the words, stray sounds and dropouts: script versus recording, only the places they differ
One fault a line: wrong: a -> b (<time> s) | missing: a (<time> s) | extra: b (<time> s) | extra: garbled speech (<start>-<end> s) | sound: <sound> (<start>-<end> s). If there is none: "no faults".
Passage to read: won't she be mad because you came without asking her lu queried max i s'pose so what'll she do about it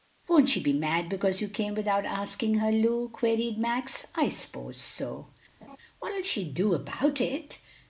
sound: laugh (5.6-5.8 s)